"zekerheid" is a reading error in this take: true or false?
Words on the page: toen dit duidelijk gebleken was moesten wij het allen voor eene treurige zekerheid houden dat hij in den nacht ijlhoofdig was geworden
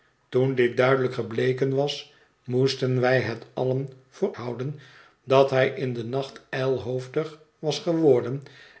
true